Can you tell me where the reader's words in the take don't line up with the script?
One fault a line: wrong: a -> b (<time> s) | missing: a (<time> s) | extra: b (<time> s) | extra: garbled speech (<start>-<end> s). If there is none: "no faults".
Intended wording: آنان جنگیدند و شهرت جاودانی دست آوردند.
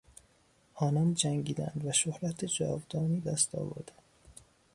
no faults